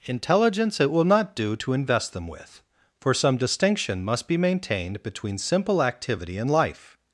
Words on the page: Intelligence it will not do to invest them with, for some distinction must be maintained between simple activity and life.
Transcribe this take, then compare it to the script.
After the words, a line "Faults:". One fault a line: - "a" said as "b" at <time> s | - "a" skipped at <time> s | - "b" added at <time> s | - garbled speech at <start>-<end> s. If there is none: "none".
Intelligence it will not do to invest them with, for some distinction must be maintained between simple activity and life.
Faults:
none